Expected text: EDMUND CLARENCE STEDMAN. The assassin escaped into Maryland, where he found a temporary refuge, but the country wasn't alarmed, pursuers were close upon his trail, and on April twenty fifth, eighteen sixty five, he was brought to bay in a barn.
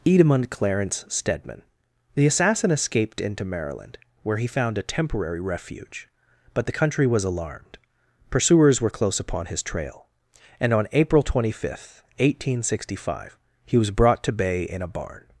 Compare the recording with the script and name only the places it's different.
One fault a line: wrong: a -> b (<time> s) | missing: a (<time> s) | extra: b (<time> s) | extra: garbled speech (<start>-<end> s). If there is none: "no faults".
wrong: wasn't -> was (7.0 s)